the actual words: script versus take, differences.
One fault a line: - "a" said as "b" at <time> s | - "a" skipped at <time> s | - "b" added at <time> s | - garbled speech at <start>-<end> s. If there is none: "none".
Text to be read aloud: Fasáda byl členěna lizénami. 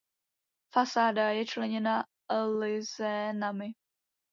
- "byl" said as "je" at 1.3 s